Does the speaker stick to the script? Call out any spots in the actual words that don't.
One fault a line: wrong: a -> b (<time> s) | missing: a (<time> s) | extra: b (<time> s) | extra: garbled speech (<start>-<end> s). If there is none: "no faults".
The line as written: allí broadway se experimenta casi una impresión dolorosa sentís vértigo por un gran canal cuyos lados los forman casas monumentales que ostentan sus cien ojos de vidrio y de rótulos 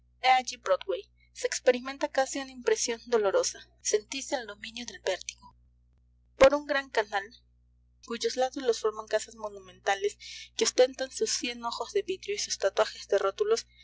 extra: el dominio del (4.3 s)
extra: sus tatuajes (12.4 s)